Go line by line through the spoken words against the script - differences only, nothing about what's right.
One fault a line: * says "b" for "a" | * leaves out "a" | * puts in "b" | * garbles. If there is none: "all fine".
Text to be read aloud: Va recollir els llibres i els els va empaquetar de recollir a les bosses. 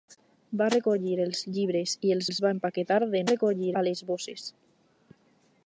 all fine